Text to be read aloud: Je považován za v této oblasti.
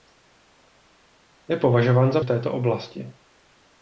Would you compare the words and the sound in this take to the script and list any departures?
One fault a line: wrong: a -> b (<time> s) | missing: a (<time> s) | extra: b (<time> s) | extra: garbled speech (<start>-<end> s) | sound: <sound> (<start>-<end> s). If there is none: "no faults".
no faults